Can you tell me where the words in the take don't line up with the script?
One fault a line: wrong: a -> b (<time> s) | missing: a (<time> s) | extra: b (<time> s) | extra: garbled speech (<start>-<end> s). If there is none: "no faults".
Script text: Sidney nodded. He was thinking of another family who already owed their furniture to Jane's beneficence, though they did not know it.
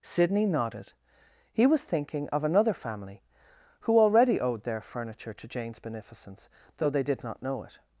no faults